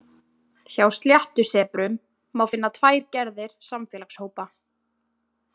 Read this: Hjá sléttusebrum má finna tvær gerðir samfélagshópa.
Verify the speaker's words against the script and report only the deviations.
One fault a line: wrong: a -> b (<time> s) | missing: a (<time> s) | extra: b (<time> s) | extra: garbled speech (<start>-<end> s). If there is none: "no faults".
no faults